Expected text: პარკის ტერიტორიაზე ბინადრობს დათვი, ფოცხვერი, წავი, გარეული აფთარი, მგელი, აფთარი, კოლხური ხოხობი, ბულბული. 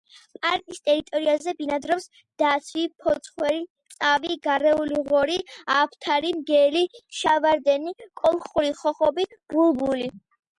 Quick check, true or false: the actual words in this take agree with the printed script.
false